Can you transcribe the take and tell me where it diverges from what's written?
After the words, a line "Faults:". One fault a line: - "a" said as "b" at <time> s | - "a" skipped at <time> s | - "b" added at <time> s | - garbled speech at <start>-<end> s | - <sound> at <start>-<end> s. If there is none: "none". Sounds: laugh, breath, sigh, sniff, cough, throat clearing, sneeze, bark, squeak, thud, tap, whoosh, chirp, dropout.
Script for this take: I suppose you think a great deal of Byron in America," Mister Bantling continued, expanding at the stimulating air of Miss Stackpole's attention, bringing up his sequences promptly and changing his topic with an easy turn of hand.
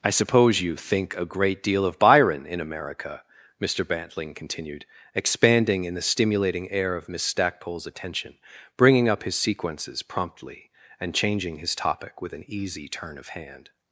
I suppose you think a great deal of Byron in America," Mister Bantling continued, expanding in the stimulating air of Miss Stackpole's attention, bringing up his sequences promptly and changing his topic with an easy turn of hand.
Faults:
- "at" said as "in" at 5.9 s